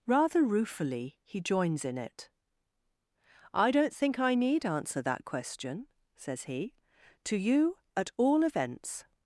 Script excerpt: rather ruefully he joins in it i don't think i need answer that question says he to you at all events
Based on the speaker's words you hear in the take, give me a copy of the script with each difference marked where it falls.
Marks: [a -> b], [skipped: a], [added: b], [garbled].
rather ruefully he joins in it i don't think i need answer that question says he to you at all events